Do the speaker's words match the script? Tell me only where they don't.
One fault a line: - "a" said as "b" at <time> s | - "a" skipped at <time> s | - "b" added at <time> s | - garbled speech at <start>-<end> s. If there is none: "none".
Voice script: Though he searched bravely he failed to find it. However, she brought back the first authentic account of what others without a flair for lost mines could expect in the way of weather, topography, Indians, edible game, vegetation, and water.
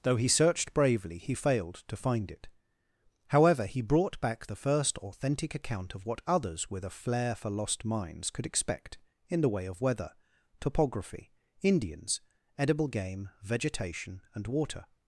- "she" said as "he" at 3.6 s
- "without" said as "with" at 6.7 s